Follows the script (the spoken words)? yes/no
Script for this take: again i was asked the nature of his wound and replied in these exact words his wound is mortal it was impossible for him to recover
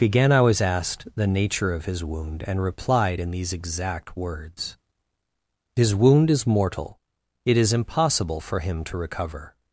no